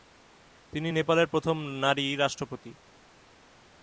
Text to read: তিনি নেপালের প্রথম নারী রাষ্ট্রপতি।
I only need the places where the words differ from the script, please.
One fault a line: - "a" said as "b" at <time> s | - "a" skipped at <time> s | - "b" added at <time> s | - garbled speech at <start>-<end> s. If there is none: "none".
none